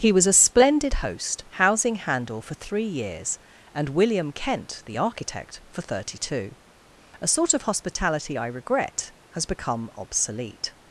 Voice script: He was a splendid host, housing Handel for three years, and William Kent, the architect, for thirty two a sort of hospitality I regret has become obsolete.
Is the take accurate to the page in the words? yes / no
yes